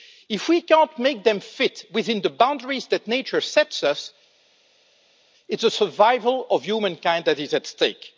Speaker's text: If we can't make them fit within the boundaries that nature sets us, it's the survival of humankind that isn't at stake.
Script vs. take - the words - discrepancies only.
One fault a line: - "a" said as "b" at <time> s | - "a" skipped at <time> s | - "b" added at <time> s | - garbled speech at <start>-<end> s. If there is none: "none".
- "isn't" said as "is" at 7.4 s